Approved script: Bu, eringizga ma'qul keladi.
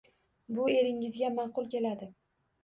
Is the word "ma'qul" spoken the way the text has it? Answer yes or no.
yes